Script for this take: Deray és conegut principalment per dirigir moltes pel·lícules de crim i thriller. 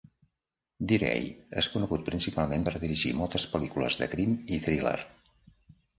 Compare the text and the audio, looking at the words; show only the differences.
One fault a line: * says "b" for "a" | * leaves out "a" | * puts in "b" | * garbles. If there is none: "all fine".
all fine